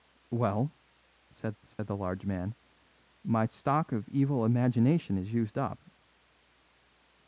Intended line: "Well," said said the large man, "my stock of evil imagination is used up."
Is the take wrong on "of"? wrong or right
right